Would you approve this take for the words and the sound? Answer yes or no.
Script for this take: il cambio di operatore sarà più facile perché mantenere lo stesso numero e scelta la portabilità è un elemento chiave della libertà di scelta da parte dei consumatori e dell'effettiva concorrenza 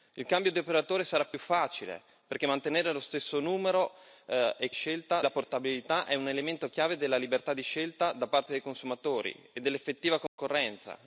no